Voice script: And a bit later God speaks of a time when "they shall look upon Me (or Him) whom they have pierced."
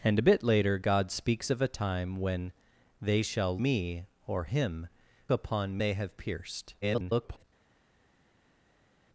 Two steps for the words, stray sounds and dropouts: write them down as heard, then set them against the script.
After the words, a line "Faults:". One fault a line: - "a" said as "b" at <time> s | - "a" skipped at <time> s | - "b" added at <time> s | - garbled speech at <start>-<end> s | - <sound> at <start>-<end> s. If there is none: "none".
And a bit later God speaks of a time when "they shall Me (or Him) upon they have pierced." [garbled]
Faults:
- "look upon" skipped at 3.6 s
- "whom" said as "upon" at 5.3 s
- garbled speech at 6.8-7.4 s